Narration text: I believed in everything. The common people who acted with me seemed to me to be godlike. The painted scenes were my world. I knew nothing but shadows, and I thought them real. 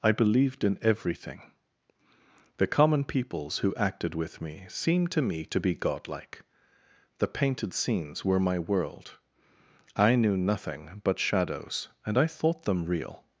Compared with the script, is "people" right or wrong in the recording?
wrong